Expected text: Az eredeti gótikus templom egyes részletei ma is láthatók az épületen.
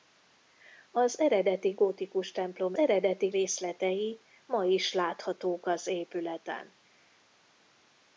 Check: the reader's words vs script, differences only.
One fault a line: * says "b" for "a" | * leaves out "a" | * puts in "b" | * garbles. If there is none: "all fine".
* says "eredeti" for "egyes"